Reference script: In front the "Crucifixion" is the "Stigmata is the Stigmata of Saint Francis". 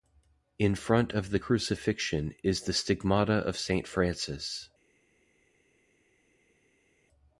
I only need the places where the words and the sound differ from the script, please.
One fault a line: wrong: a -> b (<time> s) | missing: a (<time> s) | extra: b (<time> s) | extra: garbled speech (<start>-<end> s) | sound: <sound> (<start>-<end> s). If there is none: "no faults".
extra: of (1.1 s)
missing: is the Stigmata (3.4 s)